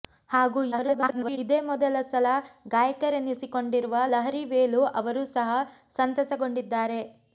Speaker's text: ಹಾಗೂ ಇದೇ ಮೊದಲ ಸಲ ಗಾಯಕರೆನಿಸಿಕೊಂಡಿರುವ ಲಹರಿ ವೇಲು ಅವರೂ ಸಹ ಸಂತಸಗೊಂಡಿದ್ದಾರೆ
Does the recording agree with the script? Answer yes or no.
no